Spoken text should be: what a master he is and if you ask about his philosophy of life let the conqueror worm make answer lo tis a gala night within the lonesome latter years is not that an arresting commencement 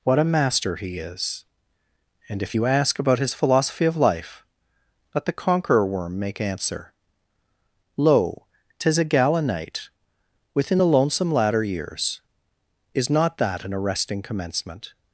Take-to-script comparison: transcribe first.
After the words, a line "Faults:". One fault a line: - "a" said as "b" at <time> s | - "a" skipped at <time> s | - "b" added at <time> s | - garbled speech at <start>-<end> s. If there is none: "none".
what a master he is and if you ask about his philosophy of life let the conqueror worm make answer lo tis a gala night within the lonesome latter years is not that an arresting commencement
Faults:
none